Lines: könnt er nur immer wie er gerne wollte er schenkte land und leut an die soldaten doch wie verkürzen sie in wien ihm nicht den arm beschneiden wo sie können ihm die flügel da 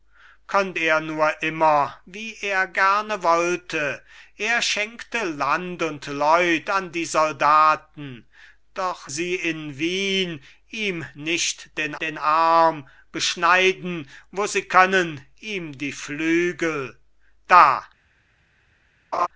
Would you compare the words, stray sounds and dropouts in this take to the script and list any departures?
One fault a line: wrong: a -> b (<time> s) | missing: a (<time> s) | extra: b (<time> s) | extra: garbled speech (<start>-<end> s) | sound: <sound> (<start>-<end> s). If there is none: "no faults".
missing: wie verkürzen (9.1 s)
extra: den (12.0 s)
sound: laugh (19.1-19.3 s)